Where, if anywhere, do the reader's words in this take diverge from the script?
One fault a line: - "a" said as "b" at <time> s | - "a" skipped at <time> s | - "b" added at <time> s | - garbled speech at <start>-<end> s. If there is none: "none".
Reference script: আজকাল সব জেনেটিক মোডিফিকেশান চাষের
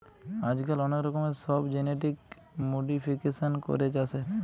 - "অনেক রকমের" added at 0.8 s
- "করে" added at 3.7 s